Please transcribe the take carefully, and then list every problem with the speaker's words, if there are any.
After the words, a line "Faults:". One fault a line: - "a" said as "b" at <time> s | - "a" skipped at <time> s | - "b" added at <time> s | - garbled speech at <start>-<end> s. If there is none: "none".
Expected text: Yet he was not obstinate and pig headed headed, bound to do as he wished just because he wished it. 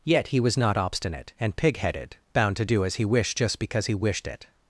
Yet he was not obstinate and pig headed, bound to do as he wished just because he wished it.
Faults:
- "headed" skipped at 2.2 s